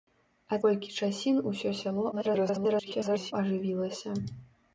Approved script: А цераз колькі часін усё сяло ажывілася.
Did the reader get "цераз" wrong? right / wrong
wrong